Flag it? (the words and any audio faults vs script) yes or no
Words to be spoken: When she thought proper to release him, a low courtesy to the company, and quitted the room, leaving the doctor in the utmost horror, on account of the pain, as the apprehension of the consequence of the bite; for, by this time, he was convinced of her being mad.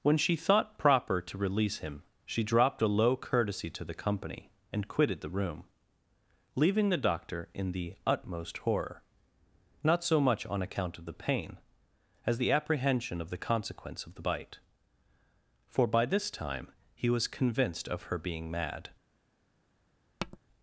yes